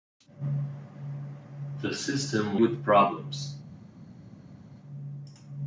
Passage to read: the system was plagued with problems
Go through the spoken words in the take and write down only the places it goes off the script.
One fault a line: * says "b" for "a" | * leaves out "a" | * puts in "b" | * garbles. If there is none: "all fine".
* leaves out "was plagued"